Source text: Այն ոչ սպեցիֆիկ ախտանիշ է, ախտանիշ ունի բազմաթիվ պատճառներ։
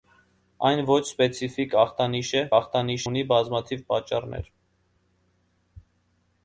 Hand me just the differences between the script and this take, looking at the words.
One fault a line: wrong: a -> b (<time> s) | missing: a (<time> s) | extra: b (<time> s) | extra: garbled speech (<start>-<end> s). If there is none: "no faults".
no faults